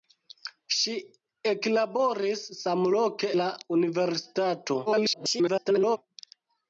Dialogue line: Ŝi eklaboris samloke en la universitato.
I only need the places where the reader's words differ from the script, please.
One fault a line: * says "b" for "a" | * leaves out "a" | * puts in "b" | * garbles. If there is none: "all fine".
* leaves out "en"
* garbles